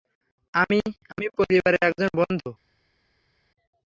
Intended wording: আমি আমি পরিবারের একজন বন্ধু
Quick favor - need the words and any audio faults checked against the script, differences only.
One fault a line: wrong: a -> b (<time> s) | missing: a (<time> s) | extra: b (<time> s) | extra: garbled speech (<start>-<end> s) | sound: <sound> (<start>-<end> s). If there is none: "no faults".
no faults